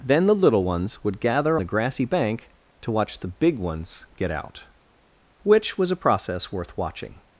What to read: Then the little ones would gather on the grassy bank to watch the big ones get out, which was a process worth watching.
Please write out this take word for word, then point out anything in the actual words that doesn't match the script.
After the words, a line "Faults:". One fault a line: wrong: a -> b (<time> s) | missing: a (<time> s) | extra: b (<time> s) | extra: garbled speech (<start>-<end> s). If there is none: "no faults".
Then the little ones would gather the grassy bank to watch the big ones get out, which was a process worth watching.
Faults:
missing: on (1.6 s)